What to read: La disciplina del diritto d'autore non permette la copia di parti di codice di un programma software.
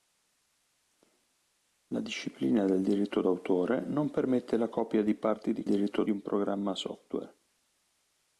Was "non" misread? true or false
false